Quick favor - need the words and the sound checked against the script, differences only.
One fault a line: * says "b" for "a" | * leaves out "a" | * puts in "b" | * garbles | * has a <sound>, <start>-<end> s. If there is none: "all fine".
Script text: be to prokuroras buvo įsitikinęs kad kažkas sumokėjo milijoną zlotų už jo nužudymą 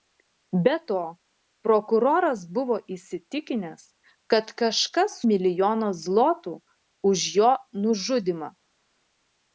* leaves out "sumokėjo"